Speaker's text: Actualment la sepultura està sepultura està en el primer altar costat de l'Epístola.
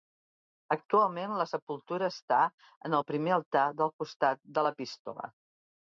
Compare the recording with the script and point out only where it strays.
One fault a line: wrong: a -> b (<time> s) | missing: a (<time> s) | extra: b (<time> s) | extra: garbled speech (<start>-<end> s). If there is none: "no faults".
missing: sepultura està (2.4 s)
extra: del (3.8 s)